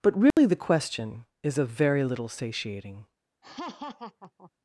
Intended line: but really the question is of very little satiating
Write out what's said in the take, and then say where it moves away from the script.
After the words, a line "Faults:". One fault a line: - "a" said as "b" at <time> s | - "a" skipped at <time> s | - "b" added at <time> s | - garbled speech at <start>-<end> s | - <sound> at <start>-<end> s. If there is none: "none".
but really the question is of very little satiating
Faults:
- dropout at 0.3-0.4 s
- laugh at 3.4-4.5 s